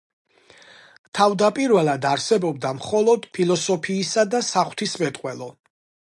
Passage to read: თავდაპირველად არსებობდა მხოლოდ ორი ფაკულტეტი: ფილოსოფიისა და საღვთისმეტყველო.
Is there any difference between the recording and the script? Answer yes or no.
yes